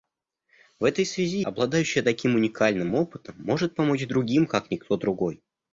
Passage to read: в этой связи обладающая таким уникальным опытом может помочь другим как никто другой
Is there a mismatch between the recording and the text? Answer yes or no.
no